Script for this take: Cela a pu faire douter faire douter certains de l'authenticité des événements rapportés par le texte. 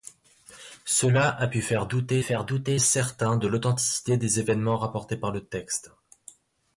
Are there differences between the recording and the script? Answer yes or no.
no